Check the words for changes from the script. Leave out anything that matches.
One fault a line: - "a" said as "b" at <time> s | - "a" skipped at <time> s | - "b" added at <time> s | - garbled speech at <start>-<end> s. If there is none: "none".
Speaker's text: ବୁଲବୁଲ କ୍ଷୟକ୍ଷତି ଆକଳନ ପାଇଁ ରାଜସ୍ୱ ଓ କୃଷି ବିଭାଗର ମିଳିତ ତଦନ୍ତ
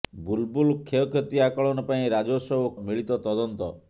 - "କୃଷି ବିଭାଗର" skipped at 2.7 s